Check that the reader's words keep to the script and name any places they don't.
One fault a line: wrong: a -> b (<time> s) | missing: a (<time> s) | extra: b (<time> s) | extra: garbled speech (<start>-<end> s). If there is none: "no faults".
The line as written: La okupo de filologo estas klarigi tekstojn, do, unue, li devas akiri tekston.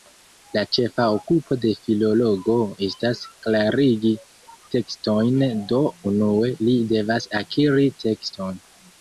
extra: ĉefa (0.8 s)